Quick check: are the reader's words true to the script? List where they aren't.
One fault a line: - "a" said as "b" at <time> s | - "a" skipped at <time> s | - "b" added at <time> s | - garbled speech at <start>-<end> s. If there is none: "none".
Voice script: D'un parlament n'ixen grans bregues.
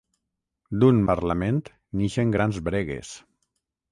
none